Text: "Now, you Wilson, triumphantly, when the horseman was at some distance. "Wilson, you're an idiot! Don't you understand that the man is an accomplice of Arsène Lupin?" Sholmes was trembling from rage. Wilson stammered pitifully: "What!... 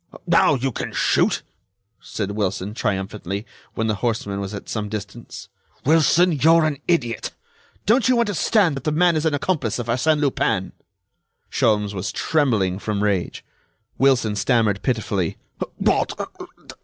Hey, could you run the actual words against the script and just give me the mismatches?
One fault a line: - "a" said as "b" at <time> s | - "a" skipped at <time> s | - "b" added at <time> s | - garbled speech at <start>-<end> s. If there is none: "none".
- "can shoot said" added at 0.7 s